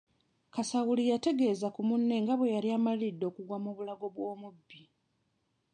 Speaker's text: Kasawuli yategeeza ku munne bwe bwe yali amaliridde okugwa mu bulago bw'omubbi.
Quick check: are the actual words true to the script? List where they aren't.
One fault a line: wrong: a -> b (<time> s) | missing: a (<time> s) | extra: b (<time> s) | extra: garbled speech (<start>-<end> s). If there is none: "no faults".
wrong: bwe -> nga (2.2 s)